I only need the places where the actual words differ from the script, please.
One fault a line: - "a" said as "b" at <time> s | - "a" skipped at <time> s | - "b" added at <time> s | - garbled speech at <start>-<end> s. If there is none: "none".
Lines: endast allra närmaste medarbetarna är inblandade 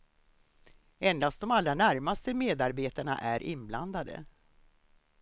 - "de" added at 1.4 s